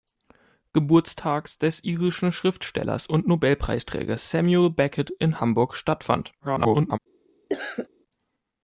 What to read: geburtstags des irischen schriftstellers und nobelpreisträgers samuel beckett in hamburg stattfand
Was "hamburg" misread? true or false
false